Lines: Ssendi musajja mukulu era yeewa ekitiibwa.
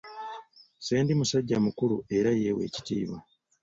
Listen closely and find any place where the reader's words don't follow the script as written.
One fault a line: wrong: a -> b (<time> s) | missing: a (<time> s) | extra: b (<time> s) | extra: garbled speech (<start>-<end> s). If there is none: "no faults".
no faults